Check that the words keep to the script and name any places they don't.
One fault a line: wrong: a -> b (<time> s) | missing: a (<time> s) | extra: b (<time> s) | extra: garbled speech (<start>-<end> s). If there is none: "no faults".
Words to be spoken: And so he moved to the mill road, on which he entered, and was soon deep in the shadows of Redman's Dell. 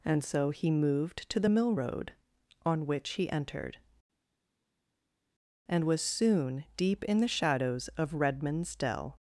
no faults